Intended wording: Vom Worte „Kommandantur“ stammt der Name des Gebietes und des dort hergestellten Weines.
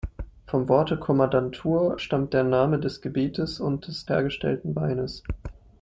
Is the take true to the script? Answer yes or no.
no